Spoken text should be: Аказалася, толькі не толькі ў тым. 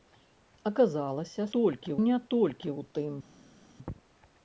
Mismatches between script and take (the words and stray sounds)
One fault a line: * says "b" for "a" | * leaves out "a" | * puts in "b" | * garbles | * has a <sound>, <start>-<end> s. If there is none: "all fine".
all fine